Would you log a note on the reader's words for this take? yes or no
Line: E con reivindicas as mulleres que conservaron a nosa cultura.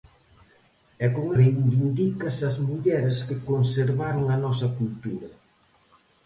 no